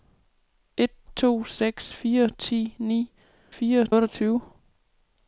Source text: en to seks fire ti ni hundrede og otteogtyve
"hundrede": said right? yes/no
no